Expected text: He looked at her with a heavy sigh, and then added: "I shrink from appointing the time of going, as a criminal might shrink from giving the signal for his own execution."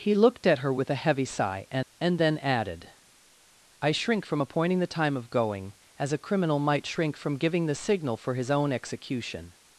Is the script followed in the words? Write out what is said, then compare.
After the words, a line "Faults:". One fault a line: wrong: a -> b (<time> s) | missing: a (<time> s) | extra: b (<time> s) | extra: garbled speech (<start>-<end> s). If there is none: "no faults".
He looked at her with a heavy sigh, and and then added: "I shrink from appointing the time of going, as a criminal might shrink from giving the signal for his own execution."
Faults:
extra: and (2.0 s)